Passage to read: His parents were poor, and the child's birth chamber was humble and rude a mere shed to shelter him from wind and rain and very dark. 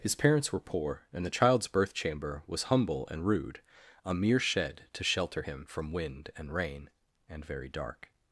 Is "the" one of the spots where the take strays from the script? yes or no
no